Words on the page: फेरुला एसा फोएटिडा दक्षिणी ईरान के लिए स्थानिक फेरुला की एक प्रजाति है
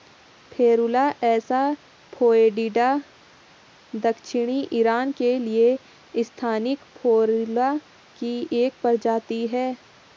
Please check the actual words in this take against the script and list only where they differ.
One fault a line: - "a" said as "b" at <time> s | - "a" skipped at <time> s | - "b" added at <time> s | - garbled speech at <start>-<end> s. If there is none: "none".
none